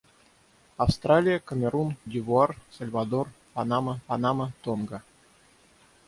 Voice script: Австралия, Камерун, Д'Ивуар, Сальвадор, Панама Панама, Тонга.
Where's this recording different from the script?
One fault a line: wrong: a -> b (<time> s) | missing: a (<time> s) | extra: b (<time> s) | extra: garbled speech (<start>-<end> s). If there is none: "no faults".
no faults